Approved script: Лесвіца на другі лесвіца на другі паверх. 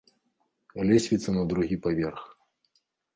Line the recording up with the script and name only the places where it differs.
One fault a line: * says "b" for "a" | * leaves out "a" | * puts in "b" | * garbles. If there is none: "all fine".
* leaves out "лесвіца на другі"